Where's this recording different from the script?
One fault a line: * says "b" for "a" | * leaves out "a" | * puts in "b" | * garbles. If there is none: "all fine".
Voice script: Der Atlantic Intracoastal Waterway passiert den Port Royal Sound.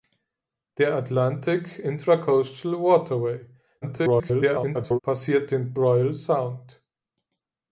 * garbles
* leaves out "Port"